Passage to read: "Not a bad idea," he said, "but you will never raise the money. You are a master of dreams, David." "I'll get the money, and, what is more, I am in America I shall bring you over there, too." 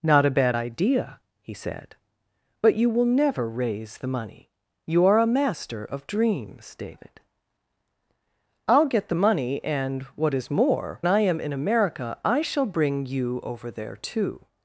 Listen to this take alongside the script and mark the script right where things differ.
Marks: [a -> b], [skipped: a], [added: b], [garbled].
"Not a bad idea," he said, "but you will never raise the money. You are a master of dreams, David." "I'll get the money, and, what is more, I am in America I shall bring you over there, too."